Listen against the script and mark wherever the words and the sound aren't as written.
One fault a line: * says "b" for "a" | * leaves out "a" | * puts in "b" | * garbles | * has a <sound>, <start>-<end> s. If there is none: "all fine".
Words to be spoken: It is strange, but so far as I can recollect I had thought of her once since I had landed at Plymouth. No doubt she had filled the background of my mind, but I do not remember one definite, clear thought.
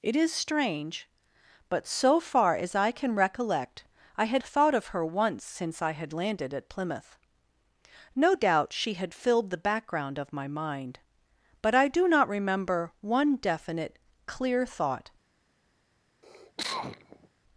* has a cough, 16.2-17.3 s